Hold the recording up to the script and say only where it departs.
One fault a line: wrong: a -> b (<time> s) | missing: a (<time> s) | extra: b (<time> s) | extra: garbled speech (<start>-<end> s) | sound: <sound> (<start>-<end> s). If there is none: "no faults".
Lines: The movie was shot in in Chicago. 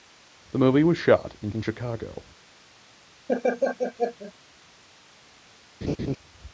sound: laugh (3.3-4.3 s)
sound: laugh (5.8-6.2 s)